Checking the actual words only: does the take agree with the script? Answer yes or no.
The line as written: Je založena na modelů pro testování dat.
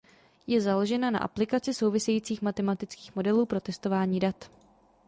no